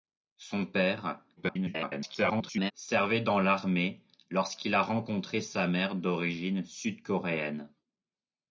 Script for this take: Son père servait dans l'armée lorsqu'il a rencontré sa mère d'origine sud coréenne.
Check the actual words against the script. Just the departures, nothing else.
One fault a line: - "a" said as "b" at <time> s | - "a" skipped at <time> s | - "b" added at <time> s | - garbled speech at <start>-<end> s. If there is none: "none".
- garbled speech at 1.4-2.7 s